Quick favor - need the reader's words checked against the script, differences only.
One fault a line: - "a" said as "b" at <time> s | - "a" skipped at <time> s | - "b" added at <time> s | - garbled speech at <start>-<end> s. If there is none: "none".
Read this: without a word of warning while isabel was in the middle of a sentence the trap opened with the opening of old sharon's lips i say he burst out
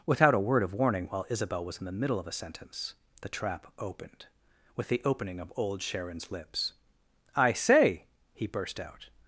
none